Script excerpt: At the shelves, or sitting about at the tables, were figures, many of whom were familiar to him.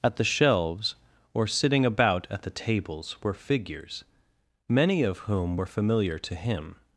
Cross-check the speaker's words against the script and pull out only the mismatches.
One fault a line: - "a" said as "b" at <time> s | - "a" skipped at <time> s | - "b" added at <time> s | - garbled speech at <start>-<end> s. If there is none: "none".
none